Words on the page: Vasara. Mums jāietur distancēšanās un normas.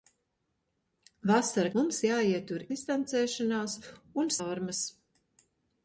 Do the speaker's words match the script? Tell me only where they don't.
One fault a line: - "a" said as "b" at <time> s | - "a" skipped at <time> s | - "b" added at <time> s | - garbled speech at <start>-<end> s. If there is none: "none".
none